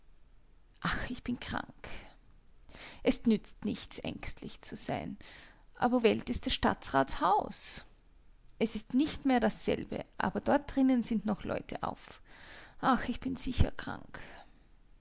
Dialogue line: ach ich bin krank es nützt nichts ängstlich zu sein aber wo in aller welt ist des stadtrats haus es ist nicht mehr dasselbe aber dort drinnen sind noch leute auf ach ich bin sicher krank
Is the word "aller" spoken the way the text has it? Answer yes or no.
no